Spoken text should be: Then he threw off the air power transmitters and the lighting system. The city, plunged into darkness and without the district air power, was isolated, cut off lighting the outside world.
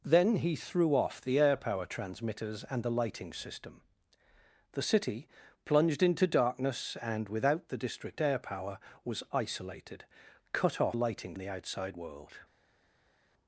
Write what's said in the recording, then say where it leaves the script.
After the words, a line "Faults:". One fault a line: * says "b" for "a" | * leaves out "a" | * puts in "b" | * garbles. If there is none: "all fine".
Then he threw off the air power transmitters and the lighting system. The city, plunged into darkness and without the district air power, was isolated, cut off lighting the outside world.
Faults:
all fine